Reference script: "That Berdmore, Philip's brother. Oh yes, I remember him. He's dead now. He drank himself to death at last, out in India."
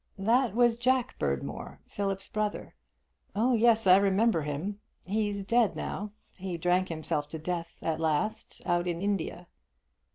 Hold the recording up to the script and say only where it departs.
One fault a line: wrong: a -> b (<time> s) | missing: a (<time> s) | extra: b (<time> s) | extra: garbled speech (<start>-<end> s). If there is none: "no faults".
extra: was Jack (0.6 s)